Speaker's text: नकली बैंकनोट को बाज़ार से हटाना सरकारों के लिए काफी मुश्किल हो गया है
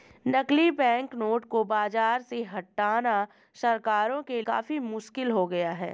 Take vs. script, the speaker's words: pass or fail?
fail